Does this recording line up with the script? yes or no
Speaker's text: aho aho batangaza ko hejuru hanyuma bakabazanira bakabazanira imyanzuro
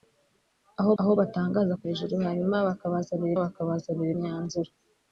yes